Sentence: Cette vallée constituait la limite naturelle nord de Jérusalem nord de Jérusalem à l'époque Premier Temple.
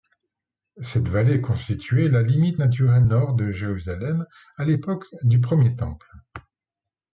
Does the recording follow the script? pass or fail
fail